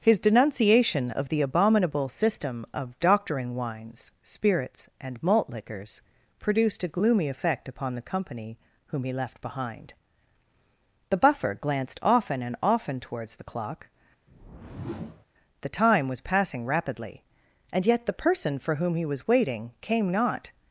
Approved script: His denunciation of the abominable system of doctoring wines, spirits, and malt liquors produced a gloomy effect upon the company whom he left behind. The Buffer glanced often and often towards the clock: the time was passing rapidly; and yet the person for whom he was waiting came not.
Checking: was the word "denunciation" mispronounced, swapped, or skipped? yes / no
no